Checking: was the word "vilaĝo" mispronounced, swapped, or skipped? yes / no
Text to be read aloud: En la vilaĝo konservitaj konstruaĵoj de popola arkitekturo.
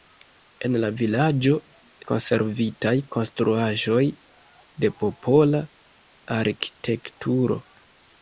no